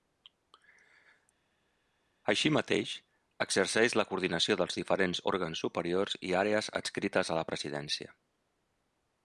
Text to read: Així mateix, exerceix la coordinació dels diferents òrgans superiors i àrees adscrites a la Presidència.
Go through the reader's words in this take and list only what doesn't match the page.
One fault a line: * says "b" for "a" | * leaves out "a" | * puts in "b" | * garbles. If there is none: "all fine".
all fine